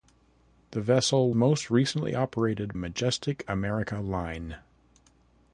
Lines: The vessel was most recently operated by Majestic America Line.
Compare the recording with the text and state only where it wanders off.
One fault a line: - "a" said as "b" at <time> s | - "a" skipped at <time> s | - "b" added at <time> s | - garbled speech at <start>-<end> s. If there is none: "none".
- "was" skipped at 1.3 s
- "by" skipped at 2.7 s